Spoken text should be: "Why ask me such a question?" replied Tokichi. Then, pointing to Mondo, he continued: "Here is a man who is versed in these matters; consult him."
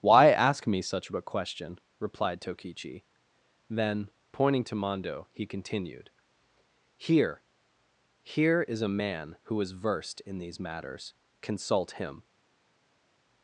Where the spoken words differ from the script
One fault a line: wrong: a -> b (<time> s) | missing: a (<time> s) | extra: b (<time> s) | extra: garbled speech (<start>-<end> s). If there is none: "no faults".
extra: Here (8.2 s)